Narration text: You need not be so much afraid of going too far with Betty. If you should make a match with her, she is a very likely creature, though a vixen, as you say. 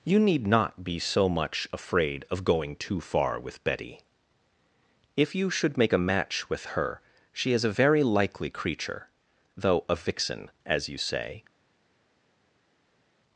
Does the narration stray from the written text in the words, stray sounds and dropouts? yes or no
no